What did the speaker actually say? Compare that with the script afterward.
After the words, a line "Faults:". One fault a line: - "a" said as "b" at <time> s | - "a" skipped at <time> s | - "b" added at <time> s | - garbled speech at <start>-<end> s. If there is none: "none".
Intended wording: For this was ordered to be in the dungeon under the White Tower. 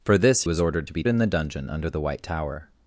For this was ordered to be in the dungeon under the White Tower.
Faults:
none